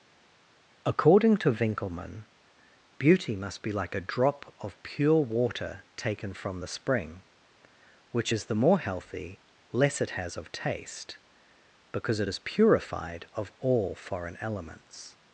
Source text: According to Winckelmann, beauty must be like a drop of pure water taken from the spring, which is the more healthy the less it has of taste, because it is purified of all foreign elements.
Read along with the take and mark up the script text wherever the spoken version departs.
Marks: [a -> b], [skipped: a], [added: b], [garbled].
According to Winckelmann, beauty must be like a drop of pure water taken from the spring, which is the more healthy [skipped: the] less it has of taste, because it is purified of all foreign elements.